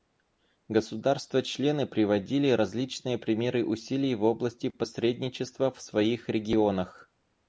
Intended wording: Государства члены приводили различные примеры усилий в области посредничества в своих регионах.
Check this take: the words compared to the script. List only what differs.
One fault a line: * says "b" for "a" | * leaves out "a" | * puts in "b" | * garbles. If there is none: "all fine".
all fine